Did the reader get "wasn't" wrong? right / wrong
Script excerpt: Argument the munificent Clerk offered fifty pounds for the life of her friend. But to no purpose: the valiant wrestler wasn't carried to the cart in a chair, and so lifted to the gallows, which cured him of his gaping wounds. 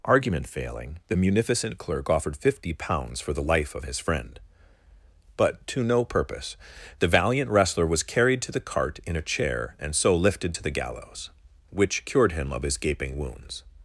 wrong